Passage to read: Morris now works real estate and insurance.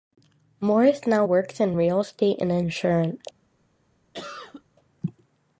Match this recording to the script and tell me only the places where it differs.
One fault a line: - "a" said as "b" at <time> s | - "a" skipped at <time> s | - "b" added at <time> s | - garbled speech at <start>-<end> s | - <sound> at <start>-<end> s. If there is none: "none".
- "in" added at 1.6 s
- cough at 4.1-4.6 s